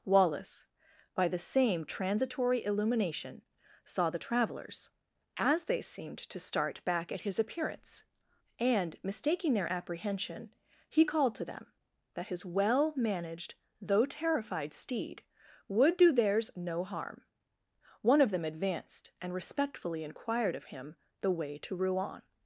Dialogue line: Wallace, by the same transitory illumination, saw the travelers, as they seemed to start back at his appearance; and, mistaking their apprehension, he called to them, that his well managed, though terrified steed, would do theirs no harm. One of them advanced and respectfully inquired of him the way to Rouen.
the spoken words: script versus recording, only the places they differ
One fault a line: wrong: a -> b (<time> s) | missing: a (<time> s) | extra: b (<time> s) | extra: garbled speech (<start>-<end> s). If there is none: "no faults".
no faults